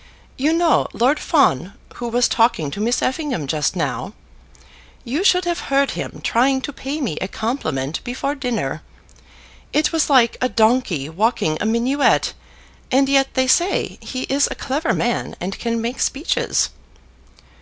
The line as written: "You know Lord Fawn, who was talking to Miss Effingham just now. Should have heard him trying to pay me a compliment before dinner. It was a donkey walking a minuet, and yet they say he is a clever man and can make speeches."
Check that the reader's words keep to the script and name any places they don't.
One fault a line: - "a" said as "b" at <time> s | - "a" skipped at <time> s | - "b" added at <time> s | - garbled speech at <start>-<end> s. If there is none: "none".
- "You" added at 5.0 s
- "like" added at 10.1 s